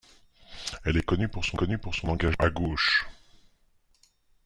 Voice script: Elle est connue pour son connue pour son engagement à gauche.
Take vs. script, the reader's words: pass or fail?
pass